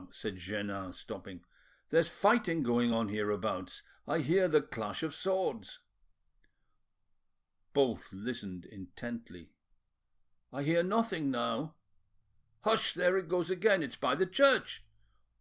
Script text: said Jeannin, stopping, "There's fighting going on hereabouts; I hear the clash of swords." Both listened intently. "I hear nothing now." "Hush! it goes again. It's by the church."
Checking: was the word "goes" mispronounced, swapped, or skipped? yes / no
no